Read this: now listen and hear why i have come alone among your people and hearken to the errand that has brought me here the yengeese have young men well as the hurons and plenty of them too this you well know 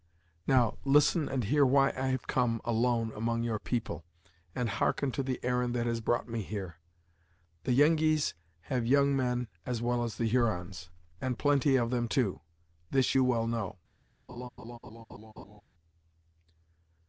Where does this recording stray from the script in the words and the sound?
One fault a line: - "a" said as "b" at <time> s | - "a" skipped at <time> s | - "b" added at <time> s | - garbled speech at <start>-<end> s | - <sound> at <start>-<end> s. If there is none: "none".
- "as" added at 9.6 s
- laugh at 14.3-15.6 s